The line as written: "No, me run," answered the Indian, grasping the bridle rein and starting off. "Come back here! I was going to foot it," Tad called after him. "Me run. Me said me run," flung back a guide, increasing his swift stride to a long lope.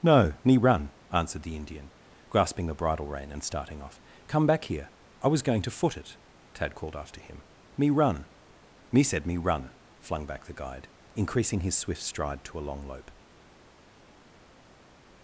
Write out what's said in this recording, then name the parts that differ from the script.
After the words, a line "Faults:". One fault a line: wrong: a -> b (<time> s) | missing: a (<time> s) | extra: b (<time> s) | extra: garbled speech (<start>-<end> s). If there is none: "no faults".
"No, me run," answered the Indian, grasping the bridle rein and starting off. "Come back here! I was going to foot it," Tad called after him. "Me run. Me said me run," flung back the guide, increasing his swift stride to a long lope.
Faults:
wrong: a -> the (10.4 s)